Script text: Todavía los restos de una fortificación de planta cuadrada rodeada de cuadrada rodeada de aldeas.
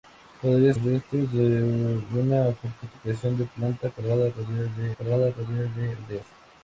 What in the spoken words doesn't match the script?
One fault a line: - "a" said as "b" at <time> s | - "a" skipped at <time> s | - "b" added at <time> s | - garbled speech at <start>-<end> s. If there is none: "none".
none